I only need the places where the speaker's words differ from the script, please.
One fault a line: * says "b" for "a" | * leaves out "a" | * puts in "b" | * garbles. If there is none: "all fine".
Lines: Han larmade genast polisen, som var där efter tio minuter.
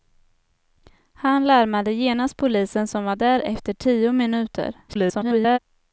* garbles